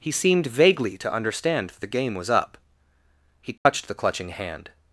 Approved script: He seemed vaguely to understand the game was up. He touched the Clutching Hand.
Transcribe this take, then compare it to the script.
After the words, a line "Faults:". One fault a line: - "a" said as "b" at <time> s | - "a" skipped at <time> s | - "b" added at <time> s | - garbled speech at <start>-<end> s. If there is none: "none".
He seemed vaguely to understand the game was up. He touched the Clutching Hand.
Faults:
none